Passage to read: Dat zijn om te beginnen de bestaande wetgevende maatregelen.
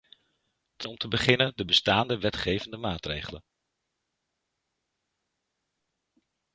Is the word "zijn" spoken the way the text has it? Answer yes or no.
no